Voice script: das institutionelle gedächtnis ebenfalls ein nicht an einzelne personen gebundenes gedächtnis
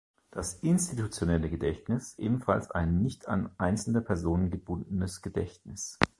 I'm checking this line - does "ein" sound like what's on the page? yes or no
yes